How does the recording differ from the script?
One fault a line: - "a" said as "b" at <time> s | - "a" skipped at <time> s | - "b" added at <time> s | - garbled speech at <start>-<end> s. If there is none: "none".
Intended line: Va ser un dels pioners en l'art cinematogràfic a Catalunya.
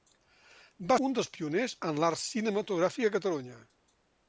- "ser" skipped at 0.9 s